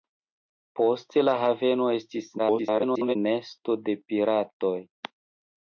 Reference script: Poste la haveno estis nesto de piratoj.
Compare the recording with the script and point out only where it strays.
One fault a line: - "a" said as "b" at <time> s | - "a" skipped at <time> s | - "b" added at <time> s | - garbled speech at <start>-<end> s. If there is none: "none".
- garbled speech at 2.4-3.2 s